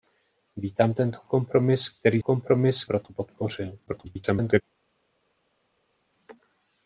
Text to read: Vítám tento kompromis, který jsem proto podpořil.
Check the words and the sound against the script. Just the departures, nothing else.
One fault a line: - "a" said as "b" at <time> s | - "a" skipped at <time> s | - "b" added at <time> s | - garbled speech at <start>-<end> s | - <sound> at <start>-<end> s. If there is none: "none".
- "jsem" said as "kompromis" at 2.2 s
- garbled speech at 3.9-4.6 s